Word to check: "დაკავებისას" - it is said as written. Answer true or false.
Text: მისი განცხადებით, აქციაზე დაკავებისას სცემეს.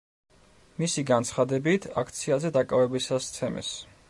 true